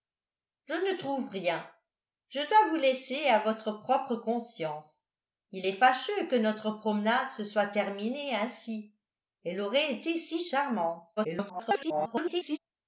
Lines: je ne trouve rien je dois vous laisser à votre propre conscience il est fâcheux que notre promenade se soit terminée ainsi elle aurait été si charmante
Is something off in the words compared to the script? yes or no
yes